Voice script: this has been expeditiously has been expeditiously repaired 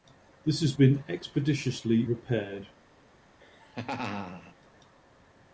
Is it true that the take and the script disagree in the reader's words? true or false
true